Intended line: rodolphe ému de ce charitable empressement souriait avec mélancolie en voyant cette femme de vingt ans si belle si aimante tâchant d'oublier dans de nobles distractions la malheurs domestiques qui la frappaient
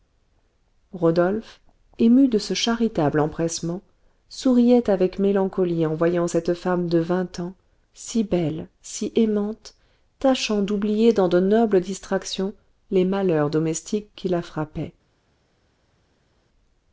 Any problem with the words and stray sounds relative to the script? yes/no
yes